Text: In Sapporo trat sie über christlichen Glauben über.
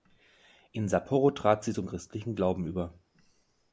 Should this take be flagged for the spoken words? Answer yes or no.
yes